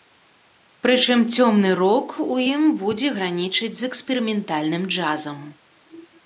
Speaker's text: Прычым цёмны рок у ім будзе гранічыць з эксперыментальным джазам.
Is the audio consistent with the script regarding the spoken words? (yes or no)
yes